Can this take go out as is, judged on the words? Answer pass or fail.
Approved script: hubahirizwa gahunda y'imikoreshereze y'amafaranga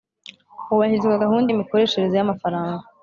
pass